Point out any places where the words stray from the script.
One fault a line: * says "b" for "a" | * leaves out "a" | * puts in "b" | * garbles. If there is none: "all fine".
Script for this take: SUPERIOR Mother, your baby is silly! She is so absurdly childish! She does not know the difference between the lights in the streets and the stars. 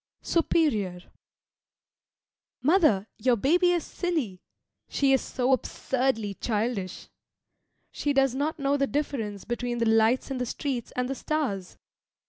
all fine